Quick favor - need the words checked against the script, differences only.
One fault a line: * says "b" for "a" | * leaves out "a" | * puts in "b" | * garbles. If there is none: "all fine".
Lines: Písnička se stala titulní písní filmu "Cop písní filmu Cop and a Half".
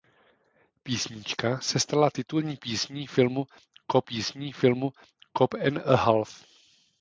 all fine